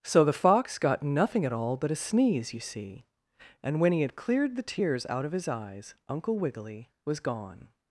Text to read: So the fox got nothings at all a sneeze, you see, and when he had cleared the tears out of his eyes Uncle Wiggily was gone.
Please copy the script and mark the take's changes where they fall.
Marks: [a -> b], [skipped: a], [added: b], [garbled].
So the fox got [nothings -> nothing] at all [added: but] a sneeze, you see, and when he had cleared the tears out of his eyes Uncle Wiggily was gone.